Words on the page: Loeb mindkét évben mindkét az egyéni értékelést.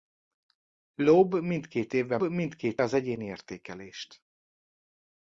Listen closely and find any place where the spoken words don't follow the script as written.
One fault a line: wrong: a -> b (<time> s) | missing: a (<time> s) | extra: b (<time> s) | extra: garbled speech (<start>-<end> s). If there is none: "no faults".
no faults